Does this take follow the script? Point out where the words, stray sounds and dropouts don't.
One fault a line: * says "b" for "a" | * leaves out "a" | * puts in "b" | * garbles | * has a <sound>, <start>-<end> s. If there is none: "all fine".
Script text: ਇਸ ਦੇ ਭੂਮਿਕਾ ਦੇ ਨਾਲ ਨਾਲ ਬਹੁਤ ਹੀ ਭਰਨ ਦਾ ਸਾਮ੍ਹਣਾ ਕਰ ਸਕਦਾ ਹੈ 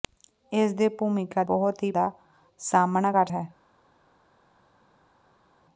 * leaves out "ਦੇ ਨਾਲ ਨਾਲ"
* leaves out "ਭਰਨ"
* leaves out "ਸਕਦਾ"